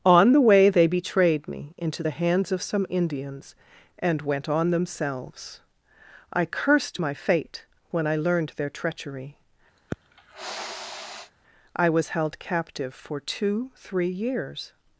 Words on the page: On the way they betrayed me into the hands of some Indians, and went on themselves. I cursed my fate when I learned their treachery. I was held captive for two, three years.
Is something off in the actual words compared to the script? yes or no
no